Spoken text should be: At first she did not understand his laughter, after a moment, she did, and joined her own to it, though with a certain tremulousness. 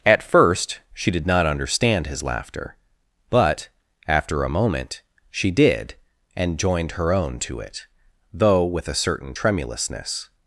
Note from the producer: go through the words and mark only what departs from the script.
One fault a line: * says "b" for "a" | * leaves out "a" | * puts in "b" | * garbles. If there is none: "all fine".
* puts in "but"